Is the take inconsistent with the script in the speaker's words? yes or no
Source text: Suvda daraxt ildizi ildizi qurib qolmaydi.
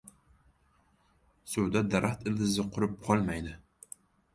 yes